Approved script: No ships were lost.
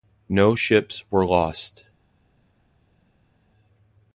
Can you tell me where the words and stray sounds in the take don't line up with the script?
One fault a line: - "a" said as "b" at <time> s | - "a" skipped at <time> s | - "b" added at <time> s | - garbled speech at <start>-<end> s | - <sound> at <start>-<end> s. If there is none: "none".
none